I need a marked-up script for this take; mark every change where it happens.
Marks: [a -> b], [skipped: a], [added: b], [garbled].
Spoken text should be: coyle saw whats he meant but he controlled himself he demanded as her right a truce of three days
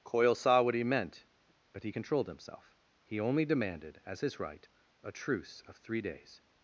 coyle saw [whats -> what] he meant but he controlled himself he [added: only] demanded as [her -> his] right a truce of three days